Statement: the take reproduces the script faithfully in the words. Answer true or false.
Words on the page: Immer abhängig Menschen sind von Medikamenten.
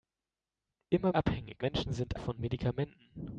true